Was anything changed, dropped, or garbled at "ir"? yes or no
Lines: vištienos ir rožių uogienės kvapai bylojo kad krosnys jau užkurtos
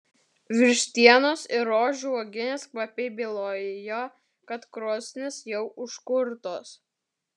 no